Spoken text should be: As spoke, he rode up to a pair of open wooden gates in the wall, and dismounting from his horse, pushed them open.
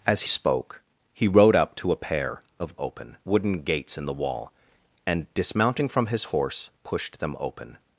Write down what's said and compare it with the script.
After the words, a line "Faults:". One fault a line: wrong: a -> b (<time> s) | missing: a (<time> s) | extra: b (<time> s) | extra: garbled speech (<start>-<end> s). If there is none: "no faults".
As spoke, he rode up to a pair of open wooden gates in the wall, and dismounting from his horse, pushed them open.
Faults:
no faults